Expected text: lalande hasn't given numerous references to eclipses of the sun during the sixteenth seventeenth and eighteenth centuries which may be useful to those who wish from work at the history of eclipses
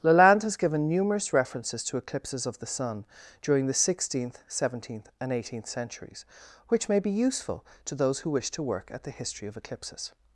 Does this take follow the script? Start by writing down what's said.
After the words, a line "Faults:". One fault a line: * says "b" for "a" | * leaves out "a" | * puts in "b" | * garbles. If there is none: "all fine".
lalande has given numerous references to eclipses of the sun during the sixteenth seventeenth and eighteenth centuries which may be useful to those who wish to work at the history of eclipses
Faults:
* says "has" for "hasn't"
* says "to" for "from"